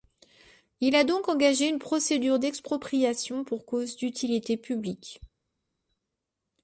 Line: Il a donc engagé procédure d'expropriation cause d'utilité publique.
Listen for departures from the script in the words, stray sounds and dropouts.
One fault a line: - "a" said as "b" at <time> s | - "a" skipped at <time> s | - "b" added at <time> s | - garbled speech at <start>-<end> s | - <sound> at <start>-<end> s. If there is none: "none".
- "une" added at 1.7 s
- "pour" added at 3.4 s